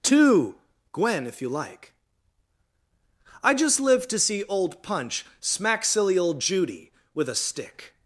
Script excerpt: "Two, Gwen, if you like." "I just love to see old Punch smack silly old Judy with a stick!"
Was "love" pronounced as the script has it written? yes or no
no